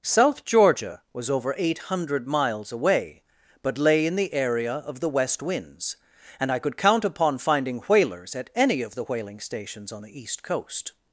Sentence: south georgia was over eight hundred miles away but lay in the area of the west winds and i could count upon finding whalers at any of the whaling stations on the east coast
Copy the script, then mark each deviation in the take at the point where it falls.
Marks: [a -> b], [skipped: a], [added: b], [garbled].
south georgia was over eight hundred miles away but lay in the area of the west winds and i could count upon finding whalers at any of the whaling stations on the east coast